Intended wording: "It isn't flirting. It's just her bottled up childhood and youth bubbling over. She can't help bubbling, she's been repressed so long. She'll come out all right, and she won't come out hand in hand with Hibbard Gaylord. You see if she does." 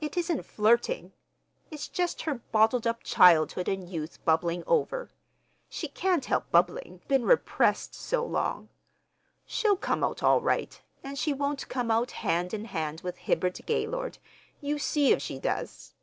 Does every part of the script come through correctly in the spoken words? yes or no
no